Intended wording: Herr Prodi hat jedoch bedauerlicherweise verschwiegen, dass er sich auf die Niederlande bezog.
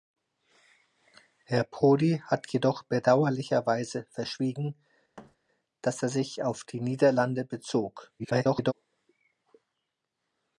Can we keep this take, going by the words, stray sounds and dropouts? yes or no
no